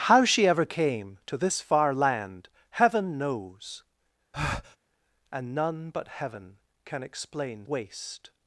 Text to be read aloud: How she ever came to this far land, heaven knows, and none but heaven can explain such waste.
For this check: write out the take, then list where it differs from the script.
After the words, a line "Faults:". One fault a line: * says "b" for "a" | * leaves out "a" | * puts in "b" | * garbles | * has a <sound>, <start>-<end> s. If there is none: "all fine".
How she ever came to this far land, heaven knows, and none but heaven can explain waste.
Faults:
* has a breath, 4.3-4.8 s
* leaves out "such"